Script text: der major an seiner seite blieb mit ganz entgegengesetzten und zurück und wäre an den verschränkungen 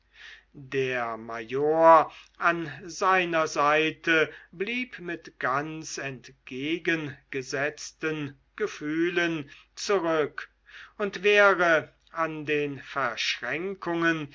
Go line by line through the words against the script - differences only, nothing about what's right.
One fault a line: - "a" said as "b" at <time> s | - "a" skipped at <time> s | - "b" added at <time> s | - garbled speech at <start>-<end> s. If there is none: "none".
- "und" said as "gefühlen" at 8.5 s